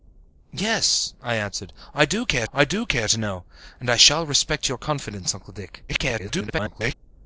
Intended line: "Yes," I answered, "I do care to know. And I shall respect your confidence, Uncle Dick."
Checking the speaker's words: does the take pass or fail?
fail